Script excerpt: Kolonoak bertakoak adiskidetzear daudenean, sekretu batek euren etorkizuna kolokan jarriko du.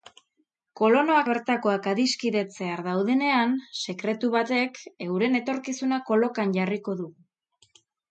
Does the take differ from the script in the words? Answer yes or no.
no